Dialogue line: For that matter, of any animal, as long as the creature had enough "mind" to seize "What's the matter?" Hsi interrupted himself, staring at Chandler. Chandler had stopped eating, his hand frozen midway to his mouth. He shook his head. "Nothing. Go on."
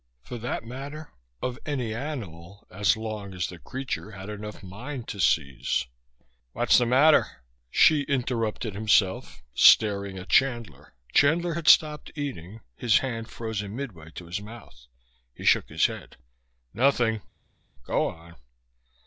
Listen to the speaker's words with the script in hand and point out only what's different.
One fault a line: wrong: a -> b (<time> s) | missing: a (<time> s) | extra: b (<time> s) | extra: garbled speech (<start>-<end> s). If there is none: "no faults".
no faults